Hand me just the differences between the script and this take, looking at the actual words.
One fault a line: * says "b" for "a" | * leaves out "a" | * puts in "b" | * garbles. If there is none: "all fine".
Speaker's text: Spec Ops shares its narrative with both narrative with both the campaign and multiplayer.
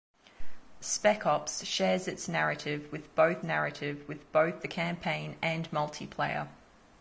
all fine